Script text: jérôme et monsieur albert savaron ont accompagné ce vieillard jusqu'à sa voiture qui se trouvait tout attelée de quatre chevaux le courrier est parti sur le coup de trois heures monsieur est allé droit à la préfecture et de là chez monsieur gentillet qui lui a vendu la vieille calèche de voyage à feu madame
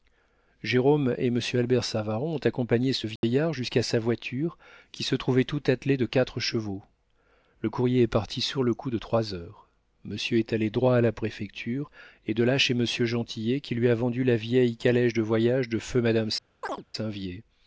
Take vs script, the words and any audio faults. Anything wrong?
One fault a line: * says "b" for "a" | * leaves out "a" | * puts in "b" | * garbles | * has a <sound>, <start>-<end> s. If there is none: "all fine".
* has a dropout, 3.2-3.2 s
* says "de" for "à"
* has a chirp, 16.6-16.8 s